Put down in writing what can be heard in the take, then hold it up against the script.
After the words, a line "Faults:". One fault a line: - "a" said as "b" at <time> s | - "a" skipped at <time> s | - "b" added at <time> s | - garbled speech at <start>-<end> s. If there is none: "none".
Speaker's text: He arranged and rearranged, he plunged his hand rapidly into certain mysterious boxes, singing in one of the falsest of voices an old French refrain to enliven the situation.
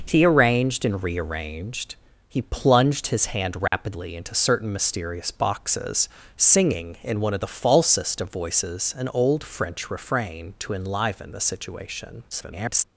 He arranged and rearranged, he plunged his hand rapidly into certain mysterious boxes, singing in one of the falsest of voices an old French refrain to enliven the situation. [garbled]
Faults:
- garbled speech at 12.3-12.8 s